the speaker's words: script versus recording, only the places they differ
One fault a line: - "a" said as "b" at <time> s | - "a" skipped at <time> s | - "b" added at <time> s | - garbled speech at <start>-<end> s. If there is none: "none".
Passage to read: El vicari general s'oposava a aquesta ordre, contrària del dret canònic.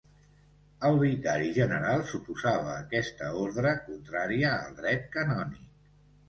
- "del" said as "al" at 4.6 s